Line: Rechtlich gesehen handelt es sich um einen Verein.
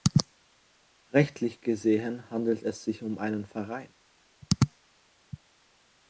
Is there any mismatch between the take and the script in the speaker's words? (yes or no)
no